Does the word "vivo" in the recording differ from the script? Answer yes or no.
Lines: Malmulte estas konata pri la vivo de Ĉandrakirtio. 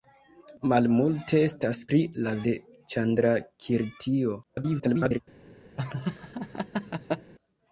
yes